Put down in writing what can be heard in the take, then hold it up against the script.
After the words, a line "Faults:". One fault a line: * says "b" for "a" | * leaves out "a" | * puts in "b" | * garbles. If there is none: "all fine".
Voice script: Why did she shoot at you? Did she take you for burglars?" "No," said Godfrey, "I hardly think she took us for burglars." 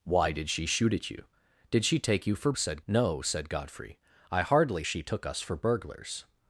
Why did she shoot at you? Did she take you for said?" "No," said Godfrey, "I hardly she took us for burglars."
Faults:
* says "said" for "burglars"
* leaves out "think"